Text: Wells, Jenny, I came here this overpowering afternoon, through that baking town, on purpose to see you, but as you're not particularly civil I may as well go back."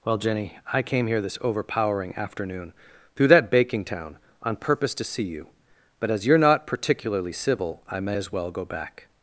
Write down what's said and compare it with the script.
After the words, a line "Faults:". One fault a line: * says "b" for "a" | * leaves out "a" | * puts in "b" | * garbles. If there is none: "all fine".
Well, Jenny, I came here this overpowering afternoon, through that baking town, on purpose to see you, but as you're not particularly civil I may as well go back."
Faults:
* says "Well" for "Wells"